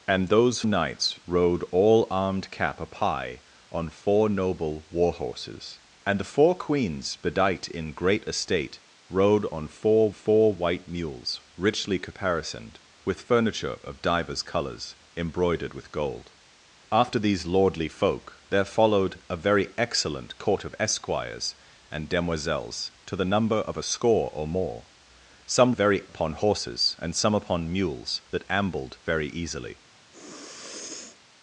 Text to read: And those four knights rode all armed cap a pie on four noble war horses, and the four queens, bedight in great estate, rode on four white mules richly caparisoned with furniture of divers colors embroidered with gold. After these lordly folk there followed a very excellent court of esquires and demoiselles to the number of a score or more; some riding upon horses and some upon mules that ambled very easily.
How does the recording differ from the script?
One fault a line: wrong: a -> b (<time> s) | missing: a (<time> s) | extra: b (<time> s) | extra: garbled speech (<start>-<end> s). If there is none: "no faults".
missing: four (0.6 s)
extra: four (10.1 s)
wrong: riding -> very (25.7 s)